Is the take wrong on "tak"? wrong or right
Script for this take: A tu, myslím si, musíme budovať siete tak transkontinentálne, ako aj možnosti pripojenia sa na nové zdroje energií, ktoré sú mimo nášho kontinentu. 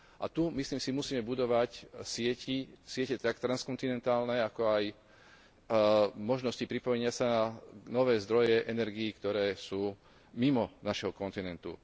right